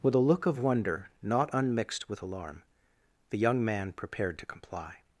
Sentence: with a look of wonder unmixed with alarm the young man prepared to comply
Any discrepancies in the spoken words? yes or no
yes